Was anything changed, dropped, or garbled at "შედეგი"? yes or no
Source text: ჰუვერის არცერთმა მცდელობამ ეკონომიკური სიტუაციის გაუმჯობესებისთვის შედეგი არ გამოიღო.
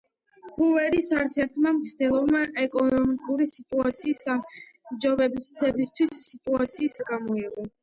yes